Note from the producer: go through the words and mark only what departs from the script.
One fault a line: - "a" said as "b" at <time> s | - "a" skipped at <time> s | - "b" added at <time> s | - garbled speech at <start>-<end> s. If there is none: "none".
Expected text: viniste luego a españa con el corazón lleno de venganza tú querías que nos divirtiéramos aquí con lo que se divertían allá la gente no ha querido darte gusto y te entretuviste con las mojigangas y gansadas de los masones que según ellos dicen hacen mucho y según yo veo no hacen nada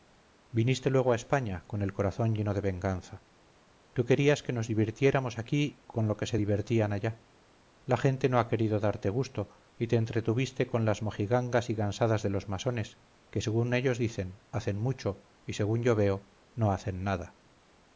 none